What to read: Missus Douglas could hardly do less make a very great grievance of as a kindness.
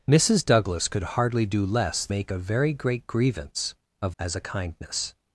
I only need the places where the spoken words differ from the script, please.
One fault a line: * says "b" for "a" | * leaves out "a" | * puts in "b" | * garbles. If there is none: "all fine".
all fine